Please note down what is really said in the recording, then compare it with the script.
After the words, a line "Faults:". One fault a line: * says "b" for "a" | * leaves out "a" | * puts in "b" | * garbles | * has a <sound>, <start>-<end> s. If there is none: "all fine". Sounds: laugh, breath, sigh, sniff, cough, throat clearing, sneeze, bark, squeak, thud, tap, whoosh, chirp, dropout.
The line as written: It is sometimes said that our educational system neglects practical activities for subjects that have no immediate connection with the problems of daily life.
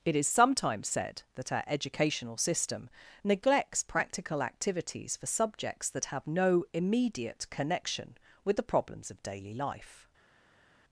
It is sometimes said that our educational system neglects practical activities for subjects that have no immediate connection with the problems of daily life.
Faults:
all fine